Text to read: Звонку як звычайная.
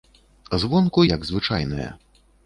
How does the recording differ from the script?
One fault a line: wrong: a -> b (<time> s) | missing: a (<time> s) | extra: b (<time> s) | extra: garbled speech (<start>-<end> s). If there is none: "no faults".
no faults